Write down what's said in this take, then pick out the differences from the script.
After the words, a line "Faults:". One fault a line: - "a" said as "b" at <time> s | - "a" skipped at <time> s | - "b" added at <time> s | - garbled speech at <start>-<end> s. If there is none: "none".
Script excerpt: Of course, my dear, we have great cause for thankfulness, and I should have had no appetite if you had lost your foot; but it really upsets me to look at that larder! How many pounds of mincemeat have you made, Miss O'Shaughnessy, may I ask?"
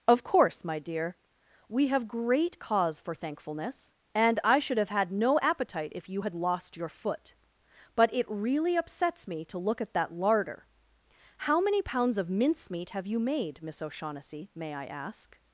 Of course, my dear, we have great cause for thankfulness, and I should have had no appetite if you had lost your foot; but it really upsets me to look at that larder! How many pounds of mincemeat have you made, Miss O'Shaughnessy, may I ask?"
Faults:
none